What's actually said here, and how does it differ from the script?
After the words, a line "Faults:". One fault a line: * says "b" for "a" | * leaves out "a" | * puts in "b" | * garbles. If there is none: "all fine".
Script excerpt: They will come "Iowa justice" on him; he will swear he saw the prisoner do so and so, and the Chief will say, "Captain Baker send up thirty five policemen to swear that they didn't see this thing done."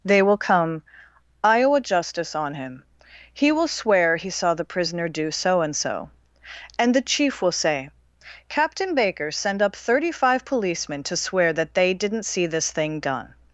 They will come "Iowa justice" on him; he will swear he saw the prisoner do so and so, and the Chief will say, "Captain Baker send up thirty five policemen to swear that they didn't see this thing done."
Faults:
all fine